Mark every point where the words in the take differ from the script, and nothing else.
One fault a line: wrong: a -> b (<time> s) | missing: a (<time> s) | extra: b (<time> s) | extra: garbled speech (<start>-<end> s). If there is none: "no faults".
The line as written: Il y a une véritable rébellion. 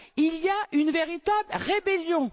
no faults